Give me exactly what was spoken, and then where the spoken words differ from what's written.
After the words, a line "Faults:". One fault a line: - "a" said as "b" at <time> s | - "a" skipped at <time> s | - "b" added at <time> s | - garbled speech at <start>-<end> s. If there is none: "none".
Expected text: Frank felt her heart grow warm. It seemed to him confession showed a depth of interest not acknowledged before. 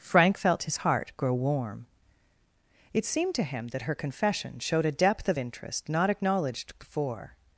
Frank felt his heart grow warm. It seemed to him that her confession showed a depth of interest not acknowledged before.
Faults:
- "her" said as "his" at 0.6 s
- "that her" added at 3.7 s